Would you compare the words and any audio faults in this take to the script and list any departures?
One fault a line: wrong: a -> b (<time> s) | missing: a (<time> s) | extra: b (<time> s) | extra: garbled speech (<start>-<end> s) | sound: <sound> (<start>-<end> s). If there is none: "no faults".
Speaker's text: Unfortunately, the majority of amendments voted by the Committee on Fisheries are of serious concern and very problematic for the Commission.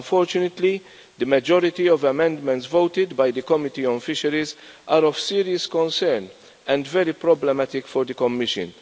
no faults